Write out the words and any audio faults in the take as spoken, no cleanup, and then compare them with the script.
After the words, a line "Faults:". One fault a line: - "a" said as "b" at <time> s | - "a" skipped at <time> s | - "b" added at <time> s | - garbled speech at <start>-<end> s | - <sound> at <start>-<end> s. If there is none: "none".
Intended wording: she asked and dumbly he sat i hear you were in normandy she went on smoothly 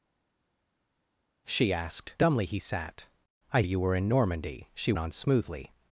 she asked dumbly he sat i you were in normandy she on smoothly
Faults:
- "and" skipped at 2.2 s
- "hear" skipped at 3.6 s
- "went" skipped at 4.9 s